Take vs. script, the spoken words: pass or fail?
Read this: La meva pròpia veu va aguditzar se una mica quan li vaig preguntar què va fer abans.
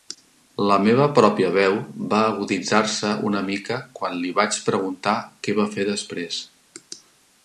fail